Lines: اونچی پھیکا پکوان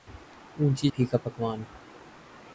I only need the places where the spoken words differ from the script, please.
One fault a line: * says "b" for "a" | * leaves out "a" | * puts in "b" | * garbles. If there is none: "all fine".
all fine